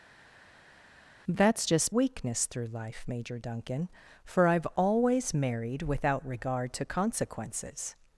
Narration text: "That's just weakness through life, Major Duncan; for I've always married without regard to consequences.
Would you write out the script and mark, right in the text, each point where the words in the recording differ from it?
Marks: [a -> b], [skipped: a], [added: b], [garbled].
"That's just weakness through life, Major Duncan; for I've always married without regard to consequences.